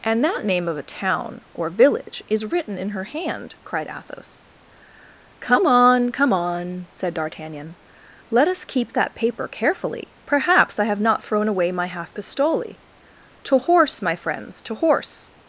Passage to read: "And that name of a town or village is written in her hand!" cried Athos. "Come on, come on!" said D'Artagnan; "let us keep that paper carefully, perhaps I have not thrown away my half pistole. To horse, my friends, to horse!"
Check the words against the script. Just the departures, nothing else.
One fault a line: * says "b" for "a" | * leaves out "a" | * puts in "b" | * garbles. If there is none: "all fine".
all fine